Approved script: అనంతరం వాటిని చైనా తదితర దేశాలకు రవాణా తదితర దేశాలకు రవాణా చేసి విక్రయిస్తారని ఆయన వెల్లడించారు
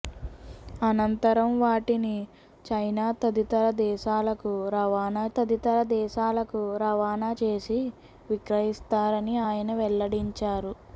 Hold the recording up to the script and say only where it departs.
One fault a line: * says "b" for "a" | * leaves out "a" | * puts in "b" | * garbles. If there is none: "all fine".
all fine